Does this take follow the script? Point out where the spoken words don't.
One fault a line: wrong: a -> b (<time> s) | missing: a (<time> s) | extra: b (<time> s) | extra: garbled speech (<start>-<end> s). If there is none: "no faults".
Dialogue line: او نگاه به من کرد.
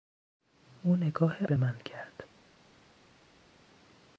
no faults